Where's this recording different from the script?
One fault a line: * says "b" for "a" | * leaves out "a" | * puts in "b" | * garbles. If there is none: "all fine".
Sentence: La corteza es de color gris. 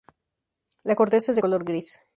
all fine